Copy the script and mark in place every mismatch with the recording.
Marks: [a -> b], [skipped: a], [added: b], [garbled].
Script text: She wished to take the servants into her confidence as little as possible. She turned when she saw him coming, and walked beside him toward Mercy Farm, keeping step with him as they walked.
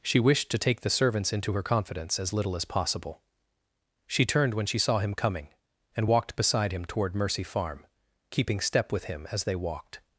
She wished to take the servants into her confidence as little as possible. She turned when she saw him coming, and walked beside him toward Mercy Farm, keeping step with him as they walked.